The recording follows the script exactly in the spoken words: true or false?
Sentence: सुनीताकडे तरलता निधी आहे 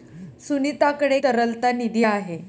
true